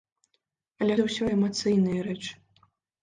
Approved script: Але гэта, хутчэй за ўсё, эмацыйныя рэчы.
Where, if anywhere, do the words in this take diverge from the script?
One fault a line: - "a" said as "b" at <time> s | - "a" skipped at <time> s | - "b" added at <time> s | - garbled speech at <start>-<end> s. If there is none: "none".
- "гэта хутчэй" skipped at 0.9 s